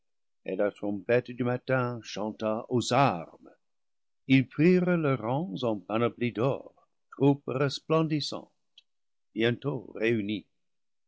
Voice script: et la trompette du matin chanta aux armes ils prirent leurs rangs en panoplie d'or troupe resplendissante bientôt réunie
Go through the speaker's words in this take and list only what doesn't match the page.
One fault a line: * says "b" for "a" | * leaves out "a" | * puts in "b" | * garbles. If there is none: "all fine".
all fine